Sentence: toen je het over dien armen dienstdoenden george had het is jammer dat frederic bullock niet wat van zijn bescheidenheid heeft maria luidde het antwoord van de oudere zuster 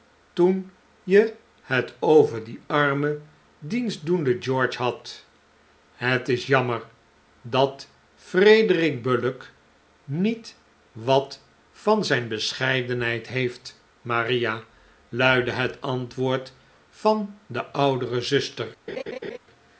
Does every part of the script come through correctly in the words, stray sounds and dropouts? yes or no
no